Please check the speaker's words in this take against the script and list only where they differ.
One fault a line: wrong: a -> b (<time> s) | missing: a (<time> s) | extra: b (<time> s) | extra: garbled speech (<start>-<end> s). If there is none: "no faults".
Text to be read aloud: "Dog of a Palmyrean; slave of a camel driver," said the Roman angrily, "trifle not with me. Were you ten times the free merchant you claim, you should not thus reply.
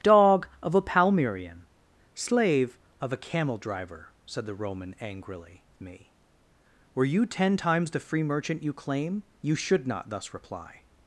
missing: trifle not with (5.7 s)